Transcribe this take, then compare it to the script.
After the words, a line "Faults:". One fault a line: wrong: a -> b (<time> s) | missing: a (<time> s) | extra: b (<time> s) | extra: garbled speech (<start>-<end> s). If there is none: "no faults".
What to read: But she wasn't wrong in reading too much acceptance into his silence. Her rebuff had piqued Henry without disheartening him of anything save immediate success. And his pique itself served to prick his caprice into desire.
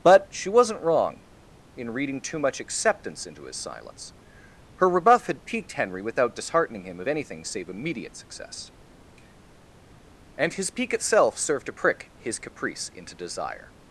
But she wasn't wrong in reading too much acceptance into his silence. Her rebuff had piqued Henry without disheartening him of anything save immediate success. And his pique itself served to prick his caprice into desire.
Faults:
no faults